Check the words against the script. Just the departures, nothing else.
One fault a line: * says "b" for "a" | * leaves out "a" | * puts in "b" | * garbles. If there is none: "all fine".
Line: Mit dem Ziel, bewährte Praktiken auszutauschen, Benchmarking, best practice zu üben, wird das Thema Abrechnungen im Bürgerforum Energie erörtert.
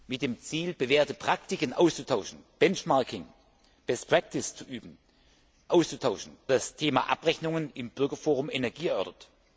* says "auszutauschen" for "wird"